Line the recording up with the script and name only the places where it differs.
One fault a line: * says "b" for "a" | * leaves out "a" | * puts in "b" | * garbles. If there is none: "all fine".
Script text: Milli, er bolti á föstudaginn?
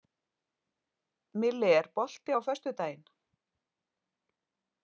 all fine